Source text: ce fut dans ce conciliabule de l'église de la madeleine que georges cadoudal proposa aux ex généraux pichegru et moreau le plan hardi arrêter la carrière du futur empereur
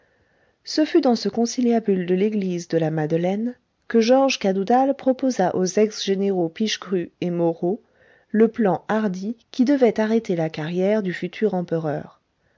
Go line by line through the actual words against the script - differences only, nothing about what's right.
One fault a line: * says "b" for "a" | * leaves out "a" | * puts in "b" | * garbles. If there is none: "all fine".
* puts in "qui devait"